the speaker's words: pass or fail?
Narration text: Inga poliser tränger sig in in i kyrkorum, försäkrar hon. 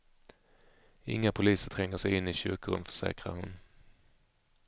fail